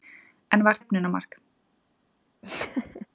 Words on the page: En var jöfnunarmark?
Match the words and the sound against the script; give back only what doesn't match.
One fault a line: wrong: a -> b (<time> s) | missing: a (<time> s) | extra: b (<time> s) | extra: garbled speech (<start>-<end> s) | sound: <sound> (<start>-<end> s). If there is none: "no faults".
sound: laugh (2.4-3.1 s)